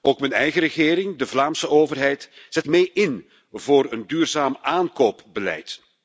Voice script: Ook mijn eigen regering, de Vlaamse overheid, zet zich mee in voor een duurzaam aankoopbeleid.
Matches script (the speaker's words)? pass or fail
fail